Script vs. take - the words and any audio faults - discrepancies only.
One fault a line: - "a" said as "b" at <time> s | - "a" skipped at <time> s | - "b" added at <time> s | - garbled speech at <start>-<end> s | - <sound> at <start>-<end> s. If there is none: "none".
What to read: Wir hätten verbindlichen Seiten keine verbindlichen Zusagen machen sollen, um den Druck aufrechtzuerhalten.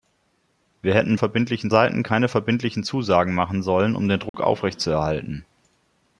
- dropout at 4.3-4.3 s